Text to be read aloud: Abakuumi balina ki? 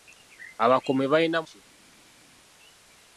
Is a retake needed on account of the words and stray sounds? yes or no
no